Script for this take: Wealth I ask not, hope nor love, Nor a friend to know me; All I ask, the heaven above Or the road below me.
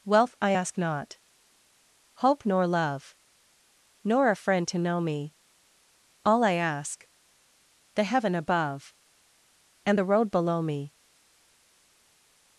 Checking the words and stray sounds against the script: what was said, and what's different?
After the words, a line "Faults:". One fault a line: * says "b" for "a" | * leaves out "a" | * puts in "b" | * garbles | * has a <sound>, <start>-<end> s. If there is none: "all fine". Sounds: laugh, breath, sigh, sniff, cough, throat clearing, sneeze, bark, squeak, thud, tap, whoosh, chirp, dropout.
Wealth I ask not, hope nor love, Nor a friend to know me; All I ask, the heaven above And the road below me.
Faults:
* says "And" for "Or"